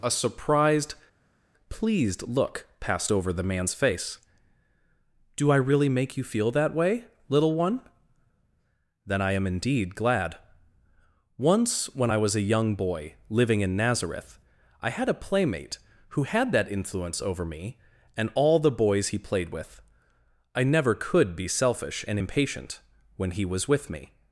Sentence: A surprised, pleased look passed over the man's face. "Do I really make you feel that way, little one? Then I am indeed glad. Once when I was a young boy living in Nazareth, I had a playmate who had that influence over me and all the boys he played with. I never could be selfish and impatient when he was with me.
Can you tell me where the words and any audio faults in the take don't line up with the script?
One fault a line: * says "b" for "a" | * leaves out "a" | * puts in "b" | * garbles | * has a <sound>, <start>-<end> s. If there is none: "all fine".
all fine